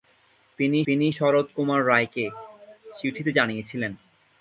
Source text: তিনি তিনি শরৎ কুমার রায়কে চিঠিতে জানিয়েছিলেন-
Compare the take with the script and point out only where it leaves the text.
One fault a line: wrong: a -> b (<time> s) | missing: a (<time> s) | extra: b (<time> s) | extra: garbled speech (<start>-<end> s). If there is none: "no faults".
no faults